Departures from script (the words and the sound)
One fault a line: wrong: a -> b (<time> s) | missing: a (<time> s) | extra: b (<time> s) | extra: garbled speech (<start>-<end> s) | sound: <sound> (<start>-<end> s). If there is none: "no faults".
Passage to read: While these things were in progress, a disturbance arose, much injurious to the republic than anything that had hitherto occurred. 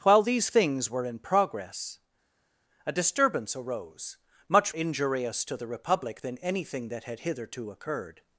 no faults